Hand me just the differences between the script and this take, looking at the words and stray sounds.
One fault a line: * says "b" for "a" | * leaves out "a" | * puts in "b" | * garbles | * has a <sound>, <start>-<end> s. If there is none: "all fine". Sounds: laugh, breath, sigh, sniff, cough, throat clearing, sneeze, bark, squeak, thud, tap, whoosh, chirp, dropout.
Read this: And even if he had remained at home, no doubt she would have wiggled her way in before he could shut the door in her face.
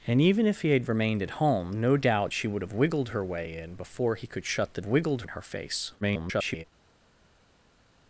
* says "wiggled" for "door"
* garbles